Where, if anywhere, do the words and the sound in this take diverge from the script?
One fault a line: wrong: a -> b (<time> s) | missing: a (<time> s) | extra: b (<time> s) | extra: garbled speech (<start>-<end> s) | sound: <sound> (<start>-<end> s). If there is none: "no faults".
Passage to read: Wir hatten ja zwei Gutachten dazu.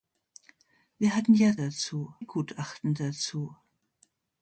wrong: zwei -> dazu (1.5 s)